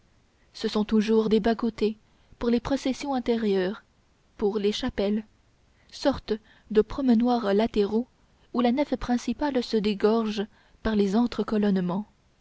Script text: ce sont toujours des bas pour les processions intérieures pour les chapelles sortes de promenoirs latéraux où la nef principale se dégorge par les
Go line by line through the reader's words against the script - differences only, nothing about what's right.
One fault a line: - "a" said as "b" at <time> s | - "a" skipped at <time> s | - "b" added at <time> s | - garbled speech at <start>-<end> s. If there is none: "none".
- "côtés" added at 1.6 s